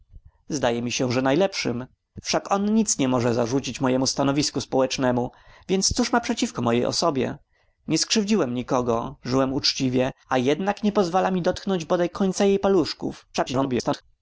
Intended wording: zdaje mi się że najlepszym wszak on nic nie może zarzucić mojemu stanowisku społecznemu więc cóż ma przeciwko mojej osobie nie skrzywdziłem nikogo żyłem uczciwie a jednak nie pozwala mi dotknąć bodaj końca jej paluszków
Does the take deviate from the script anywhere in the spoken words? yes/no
yes